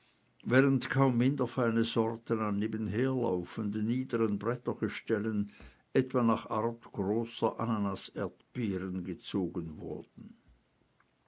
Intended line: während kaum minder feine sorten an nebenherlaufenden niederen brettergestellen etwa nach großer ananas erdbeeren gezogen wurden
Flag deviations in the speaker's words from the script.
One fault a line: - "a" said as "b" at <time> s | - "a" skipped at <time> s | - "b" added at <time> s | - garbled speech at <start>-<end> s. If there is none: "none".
- "art" added at 6.5 s